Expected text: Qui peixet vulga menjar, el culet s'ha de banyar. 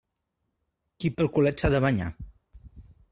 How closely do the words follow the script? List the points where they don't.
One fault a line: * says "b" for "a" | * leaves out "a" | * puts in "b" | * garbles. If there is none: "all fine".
* leaves out "peixet vulga menjar"